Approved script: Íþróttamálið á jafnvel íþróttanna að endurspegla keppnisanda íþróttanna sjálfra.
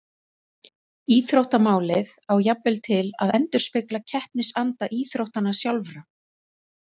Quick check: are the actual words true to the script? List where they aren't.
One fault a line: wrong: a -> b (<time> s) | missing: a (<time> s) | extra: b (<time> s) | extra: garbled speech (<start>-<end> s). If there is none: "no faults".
wrong: íþróttanna -> til (2.9 s)